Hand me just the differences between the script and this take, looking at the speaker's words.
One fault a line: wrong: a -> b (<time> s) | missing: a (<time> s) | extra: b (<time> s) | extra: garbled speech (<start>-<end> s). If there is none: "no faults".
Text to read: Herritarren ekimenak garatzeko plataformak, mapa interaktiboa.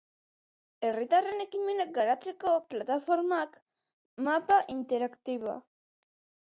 no faults